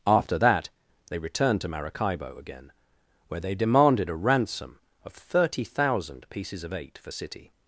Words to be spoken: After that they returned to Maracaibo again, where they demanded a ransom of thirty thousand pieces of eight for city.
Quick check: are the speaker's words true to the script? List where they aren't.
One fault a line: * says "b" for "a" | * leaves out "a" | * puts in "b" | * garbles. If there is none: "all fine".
all fine